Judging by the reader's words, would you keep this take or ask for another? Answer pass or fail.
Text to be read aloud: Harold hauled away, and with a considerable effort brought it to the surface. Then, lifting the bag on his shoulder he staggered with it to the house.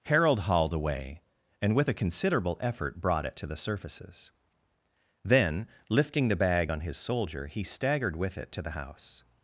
fail